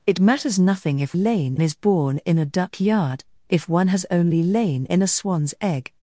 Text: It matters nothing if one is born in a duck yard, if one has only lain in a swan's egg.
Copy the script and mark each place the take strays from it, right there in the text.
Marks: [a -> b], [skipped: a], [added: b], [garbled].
It matters nothing if [one -> lain] is born in a duck yard, if one has only lain in a swan's egg.